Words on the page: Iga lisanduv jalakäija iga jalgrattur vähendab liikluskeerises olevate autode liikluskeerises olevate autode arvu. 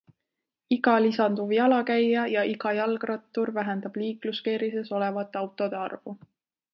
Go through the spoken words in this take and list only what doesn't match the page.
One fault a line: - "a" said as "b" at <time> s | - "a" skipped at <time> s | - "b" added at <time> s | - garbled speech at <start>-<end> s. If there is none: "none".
- "ja" added at 2.3 s
- "liikluskeerises olevate autode" skipped at 5.8 s